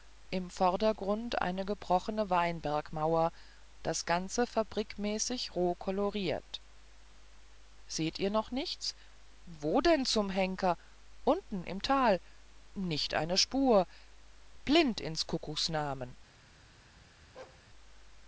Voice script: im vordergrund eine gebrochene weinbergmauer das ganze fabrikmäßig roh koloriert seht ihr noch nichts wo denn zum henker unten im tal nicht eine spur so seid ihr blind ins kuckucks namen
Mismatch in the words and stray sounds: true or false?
true